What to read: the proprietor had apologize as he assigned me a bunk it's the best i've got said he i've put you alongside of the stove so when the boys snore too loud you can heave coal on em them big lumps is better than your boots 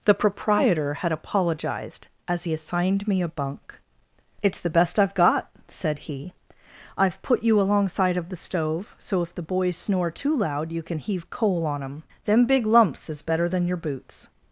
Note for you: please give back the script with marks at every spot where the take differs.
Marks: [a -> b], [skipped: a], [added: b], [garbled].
the proprietor had [apologize -> apologized] as he assigned me a bunk it's the best i've got said he i've put you alongside of the stove so [when -> if] the boys snore too loud you can heave coal on em them big lumps is better than your boots